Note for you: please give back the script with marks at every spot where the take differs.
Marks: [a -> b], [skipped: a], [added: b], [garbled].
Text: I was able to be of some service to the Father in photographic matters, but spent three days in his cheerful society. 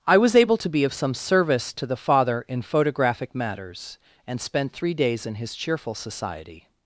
I was able to be of some service to the Father in photographic matters, [but -> and] spent three days in his cheerful society.